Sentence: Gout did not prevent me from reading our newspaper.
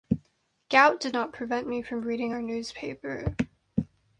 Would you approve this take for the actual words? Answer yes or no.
yes